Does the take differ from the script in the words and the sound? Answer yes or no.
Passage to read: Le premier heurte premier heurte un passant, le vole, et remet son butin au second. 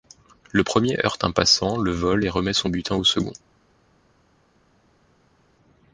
yes